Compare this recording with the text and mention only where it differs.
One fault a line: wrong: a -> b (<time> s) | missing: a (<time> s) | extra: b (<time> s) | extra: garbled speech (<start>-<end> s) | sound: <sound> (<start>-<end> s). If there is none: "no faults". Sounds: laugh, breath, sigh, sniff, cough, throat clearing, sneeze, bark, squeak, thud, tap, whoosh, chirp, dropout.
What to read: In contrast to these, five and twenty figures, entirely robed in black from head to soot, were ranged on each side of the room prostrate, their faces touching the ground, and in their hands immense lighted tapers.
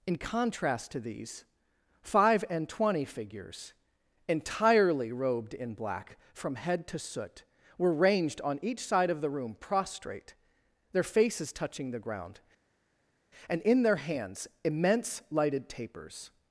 no faults